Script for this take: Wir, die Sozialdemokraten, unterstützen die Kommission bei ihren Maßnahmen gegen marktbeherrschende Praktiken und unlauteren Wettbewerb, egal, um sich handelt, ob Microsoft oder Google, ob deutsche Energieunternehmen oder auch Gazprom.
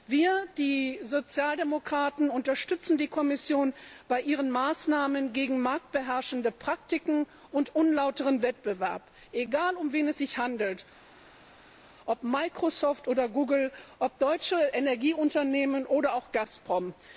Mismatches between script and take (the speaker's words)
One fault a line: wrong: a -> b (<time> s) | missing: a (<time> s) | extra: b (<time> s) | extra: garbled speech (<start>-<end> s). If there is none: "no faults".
extra: wen es (9.9 s)